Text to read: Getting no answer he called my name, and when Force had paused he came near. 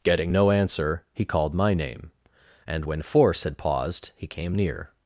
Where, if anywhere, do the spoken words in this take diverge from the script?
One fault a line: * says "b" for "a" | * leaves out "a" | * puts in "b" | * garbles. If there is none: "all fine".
all fine